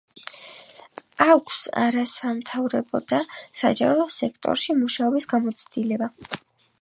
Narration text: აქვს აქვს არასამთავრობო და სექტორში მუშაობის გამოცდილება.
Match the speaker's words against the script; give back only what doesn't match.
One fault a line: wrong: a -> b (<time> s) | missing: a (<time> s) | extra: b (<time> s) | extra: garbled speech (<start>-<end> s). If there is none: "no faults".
missing: აქვს (1.6 s)
extra: საჯარო (3.6 s)